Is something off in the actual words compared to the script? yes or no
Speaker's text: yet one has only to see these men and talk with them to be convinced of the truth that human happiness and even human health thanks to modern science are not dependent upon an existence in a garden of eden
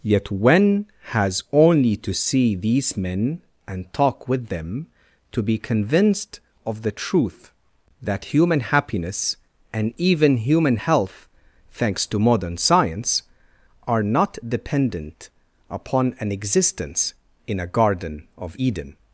no